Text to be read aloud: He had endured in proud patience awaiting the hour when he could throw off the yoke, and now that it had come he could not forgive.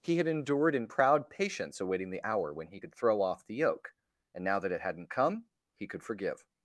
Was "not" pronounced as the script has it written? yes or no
no